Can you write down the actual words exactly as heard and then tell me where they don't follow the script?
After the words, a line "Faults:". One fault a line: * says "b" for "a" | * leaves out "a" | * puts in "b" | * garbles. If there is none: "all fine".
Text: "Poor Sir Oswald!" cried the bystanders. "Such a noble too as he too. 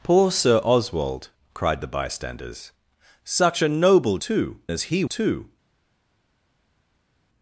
"Poor Sir Oswald!" cried the bystanders. "Such a noble too as he too.
Faults:
all fine